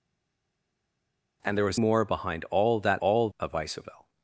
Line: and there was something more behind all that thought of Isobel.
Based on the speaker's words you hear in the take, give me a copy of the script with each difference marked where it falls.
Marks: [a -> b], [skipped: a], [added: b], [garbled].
and there was [skipped: something] more behind all that [thought -> all] of Isobel.